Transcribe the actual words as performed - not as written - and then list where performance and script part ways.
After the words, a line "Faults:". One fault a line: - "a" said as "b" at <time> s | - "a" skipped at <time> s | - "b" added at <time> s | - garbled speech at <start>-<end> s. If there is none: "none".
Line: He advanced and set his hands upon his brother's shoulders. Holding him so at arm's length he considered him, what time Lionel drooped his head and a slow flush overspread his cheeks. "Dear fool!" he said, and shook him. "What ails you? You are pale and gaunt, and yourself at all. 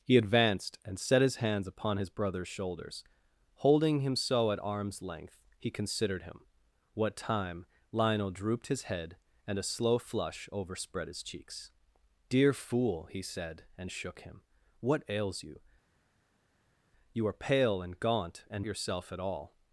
He advanced and set his hands upon his brother's shoulders. Holding him so at arm's length he considered him, what time Lionel drooped his head and a slow flush overspread his cheeks. "Dear fool!" he said, and shook him. "What ails you? You are pale and gaunt, and yourself at all.
Faults:
none